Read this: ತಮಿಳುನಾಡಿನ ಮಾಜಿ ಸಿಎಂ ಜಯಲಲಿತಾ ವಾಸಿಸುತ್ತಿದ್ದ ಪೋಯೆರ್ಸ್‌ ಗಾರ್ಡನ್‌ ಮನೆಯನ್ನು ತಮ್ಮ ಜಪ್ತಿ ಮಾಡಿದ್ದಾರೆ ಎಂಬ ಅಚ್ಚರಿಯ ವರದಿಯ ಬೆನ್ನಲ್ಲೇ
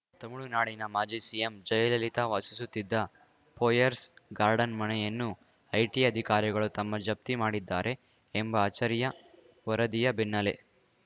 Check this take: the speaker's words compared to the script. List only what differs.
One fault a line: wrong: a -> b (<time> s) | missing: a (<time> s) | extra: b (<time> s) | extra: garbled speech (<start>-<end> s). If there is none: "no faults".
extra: ಐಟಿ ಅಧಿಕಾರಿಗಳು (5.7 s)